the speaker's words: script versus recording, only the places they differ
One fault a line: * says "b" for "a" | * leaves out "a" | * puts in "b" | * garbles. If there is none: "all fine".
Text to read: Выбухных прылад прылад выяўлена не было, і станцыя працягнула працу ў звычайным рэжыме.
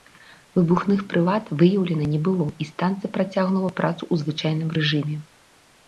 * leaves out "прылад"